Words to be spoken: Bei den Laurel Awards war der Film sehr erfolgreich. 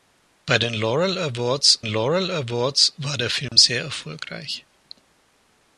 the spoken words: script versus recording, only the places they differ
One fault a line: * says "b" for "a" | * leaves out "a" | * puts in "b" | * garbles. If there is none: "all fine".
* puts in "Laurel Awards"